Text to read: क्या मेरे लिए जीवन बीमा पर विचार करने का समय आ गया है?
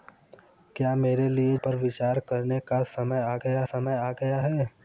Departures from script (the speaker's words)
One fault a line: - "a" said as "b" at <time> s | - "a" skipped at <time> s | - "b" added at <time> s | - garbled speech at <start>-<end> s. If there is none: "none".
- "जीवन बीमा" skipped at 1.6 s
- "समय आ गया" added at 3.6 s